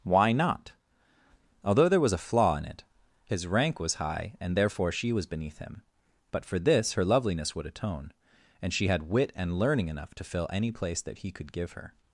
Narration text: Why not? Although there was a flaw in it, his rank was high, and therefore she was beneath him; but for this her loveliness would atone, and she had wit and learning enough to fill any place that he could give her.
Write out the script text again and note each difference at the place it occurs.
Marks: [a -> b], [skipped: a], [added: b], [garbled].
Why not? Although there was a flaw in it, his rank was high, and therefore she was beneath him; but for this her loveliness would atone, and she had wit and learning enough to fill any place that he could give her.